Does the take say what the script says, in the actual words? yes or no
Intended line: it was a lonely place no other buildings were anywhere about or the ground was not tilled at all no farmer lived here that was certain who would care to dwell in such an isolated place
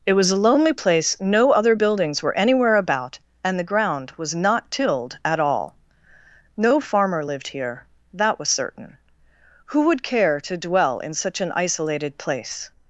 no